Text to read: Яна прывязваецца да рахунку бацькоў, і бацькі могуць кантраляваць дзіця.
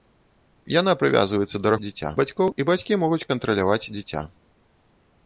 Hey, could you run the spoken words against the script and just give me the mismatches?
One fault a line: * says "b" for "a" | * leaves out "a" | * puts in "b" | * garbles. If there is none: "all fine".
* says "дзіця" for "рахунку"